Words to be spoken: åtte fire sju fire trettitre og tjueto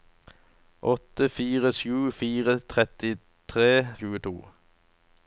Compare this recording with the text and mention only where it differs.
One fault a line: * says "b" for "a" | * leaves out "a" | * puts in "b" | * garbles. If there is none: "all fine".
all fine